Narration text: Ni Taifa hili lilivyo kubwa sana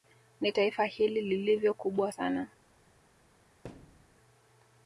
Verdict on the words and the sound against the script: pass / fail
fail